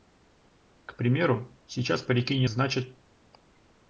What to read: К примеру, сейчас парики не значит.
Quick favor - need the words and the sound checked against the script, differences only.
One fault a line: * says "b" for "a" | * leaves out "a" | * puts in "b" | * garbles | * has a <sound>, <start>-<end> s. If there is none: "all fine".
all fine